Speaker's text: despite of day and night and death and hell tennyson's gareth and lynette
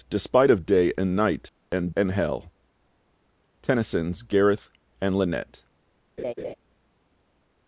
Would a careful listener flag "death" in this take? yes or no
yes